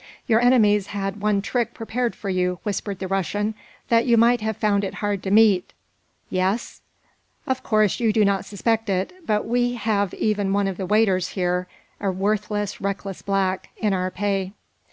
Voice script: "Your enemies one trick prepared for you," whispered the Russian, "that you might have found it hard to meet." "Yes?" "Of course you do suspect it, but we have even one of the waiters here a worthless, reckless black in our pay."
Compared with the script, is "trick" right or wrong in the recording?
right